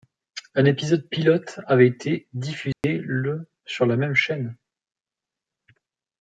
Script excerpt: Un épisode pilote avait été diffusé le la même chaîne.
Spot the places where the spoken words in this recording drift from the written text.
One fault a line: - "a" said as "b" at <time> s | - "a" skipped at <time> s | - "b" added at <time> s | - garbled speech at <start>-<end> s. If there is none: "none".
- "sur" added at 3.6 s